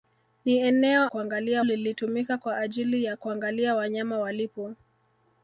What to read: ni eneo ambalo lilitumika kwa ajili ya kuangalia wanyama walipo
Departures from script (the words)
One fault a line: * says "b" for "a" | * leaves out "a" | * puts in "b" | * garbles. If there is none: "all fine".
* says "kuangalia" for "ambalo"